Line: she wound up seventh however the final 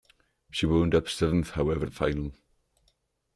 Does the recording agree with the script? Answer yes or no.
yes